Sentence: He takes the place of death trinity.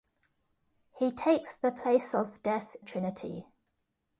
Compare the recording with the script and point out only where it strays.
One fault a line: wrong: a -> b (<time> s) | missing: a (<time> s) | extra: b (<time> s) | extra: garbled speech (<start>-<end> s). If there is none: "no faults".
no faults